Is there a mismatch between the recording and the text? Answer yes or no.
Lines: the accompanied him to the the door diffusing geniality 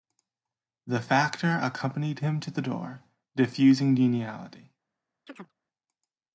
yes